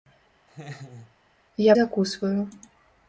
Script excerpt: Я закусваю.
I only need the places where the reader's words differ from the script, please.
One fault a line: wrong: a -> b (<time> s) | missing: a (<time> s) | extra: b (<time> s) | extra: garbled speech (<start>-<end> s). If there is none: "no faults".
no faults